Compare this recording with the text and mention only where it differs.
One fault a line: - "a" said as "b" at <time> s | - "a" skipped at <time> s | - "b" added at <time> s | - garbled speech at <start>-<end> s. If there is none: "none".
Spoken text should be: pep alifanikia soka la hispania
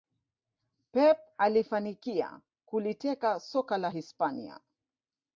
- "kuliteka" added at 2.6 s